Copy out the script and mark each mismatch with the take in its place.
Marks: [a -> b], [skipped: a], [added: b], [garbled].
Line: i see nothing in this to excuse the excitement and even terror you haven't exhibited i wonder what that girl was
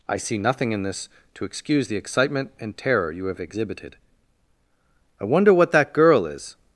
i see nothing in this to excuse the excitement and [skipped: even] terror you [haven't -> have] exhibited i wonder what that girl [was -> is]